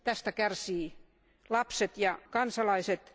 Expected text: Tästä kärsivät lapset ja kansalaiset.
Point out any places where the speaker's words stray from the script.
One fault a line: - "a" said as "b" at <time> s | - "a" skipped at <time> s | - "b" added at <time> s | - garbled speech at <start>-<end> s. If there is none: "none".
none